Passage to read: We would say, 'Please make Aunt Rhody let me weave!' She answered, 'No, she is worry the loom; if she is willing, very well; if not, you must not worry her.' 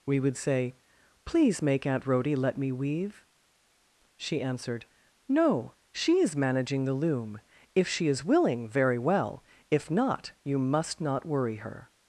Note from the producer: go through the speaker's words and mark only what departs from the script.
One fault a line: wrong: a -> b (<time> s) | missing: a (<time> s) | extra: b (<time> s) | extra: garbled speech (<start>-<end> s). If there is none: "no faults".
wrong: worry -> managing (6.4 s)